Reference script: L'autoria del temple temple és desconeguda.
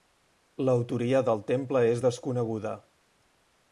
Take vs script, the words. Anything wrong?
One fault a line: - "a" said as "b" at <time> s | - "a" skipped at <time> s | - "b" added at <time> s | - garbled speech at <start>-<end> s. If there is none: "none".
- "temple" skipped at 1.8 s